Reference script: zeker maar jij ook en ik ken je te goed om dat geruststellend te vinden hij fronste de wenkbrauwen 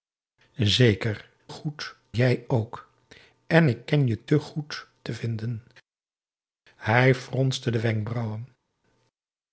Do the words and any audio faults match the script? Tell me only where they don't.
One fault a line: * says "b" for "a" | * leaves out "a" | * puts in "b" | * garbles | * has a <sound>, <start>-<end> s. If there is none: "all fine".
* says "goed" for "maar"
* leaves out "om dat geruststellend"